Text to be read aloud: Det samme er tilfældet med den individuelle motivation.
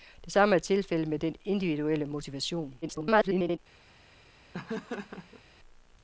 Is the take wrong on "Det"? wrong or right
right